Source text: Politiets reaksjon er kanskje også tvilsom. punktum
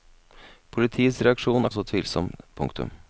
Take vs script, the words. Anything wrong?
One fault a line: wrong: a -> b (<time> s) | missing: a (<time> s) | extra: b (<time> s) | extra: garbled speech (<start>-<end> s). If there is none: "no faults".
missing: kanskje (1.7 s)